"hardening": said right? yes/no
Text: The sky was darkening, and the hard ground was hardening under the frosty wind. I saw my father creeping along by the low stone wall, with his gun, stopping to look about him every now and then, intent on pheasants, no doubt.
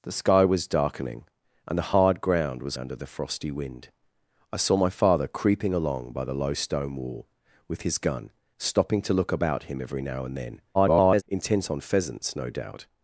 no